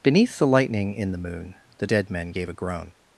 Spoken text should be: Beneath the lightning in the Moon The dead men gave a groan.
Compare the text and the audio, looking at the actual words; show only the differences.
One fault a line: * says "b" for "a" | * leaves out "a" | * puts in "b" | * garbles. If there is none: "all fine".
all fine